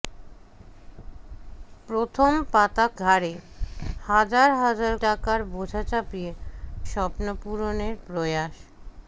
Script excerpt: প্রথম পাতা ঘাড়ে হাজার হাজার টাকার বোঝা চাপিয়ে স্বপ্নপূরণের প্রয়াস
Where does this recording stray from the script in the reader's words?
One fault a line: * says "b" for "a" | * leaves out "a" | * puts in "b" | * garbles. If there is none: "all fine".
all fine